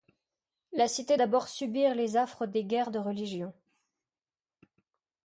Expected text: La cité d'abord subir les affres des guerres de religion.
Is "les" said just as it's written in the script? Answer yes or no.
yes